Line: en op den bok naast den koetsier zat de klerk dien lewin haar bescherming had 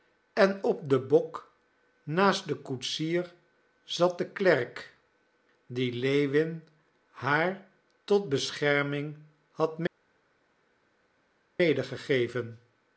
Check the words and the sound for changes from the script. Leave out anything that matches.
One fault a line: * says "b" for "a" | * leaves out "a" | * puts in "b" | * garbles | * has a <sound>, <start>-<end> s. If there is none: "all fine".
* puts in "tot"